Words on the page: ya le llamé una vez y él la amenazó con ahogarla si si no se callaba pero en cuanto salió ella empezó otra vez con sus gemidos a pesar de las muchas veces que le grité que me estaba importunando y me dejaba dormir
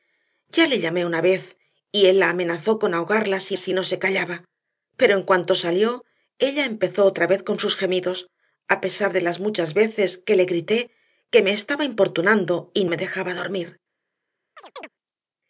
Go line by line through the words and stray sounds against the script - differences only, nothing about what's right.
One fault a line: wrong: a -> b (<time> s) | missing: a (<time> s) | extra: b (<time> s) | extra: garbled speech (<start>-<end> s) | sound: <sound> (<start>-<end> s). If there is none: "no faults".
sound: chirp (14.6-14.9 s)